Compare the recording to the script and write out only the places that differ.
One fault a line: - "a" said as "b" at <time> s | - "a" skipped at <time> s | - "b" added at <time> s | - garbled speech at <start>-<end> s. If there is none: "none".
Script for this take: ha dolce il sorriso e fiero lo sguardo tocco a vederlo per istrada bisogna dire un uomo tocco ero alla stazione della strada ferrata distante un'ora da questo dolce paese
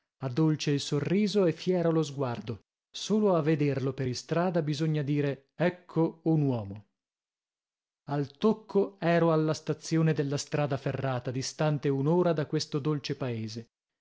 - "tocco" said as "solo" at 2.9 s
- "ecco" added at 5.6 s
- "al" added at 8.1 s